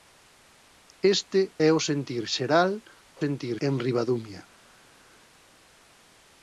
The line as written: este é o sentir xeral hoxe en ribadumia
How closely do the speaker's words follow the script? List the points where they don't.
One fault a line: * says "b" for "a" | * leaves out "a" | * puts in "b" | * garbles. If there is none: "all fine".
* says "sentir" for "hoxe"